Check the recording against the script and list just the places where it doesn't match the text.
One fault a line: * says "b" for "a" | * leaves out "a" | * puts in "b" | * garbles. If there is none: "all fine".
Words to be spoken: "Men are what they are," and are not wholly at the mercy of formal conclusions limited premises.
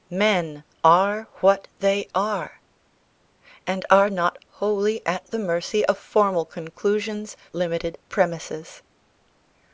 all fine